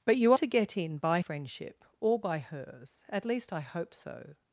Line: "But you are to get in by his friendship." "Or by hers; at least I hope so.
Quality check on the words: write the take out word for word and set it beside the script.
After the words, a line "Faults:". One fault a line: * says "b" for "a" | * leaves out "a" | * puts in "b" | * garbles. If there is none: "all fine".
"But you to get in by friendship." "Or by hers; at least I hope so.
Faults:
* leaves out "are"
* leaves out "his"